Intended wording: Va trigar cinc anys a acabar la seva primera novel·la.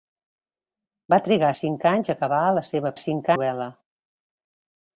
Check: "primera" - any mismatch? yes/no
yes